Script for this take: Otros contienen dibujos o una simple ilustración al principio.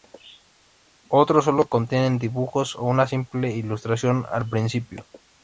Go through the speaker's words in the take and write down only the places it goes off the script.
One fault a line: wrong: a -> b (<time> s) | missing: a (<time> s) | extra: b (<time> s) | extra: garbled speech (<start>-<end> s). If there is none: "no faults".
extra: solo (1.4 s)